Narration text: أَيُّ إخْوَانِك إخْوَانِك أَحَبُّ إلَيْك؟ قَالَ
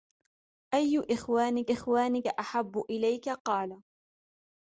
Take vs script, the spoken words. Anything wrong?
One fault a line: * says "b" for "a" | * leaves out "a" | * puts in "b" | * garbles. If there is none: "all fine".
all fine